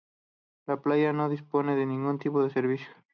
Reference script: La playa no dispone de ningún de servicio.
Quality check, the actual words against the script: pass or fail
fail